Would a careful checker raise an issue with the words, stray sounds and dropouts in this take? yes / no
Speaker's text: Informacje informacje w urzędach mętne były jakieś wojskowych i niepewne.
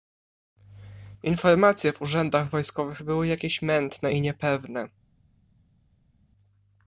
yes